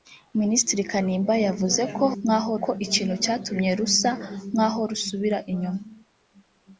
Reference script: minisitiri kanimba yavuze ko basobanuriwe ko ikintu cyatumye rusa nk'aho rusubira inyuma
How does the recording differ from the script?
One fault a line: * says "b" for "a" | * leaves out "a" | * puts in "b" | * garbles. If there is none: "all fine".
* says "nk'aho" for "basobanuriwe"